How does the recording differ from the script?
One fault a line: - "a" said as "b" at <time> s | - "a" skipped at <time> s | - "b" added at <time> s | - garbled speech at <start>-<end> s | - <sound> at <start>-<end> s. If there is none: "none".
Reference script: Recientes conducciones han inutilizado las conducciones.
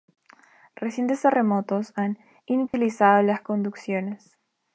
- "conducciones" said as "terremotos" at 1.2 s
- dropout at 2.7-2.7 s